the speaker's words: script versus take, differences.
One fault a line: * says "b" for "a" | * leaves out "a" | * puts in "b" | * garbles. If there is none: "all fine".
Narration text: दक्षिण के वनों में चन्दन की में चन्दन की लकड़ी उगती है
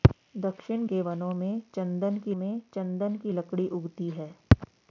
all fine